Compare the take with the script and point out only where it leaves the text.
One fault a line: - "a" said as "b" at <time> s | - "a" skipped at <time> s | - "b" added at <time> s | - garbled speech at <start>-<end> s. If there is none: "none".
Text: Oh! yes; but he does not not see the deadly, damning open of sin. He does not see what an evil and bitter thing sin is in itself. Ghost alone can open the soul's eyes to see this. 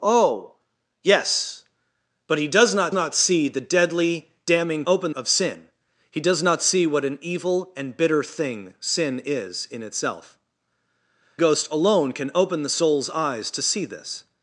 none